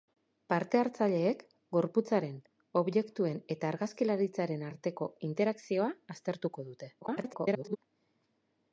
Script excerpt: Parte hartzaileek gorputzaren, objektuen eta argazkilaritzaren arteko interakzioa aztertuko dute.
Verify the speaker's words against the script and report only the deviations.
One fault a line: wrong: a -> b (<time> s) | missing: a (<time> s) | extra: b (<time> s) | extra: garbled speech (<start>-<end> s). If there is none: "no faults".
extra: garbled speech (7.0-7.8 s)